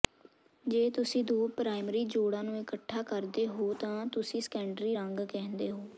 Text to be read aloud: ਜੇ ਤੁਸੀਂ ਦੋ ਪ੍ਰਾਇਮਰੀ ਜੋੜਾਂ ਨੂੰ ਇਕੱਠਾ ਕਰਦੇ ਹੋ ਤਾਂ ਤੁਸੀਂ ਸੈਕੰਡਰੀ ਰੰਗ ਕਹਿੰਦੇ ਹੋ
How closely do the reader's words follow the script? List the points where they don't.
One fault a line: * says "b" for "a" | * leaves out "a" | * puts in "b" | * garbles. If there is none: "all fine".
all fine